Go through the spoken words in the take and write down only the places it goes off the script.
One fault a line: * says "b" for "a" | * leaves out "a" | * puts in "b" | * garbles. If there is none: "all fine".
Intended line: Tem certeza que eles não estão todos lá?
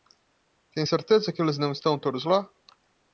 all fine